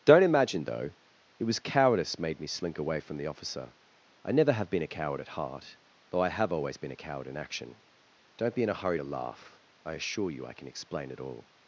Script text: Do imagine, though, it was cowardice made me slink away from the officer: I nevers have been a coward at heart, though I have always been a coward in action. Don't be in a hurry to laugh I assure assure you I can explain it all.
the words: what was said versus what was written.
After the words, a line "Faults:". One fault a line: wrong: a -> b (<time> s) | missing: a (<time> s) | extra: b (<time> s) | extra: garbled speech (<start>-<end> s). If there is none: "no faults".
Don't imagine, though, it was cowardice made me slink away from the officer: I never have been a coward at heart, though I have always been a coward in action. Don't be in a hurry to laugh I assure you I can explain it all.
Faults:
wrong: Do -> Don't (0.0 s)
wrong: nevers -> never (4.3 s)
missing: assure (10.3 s)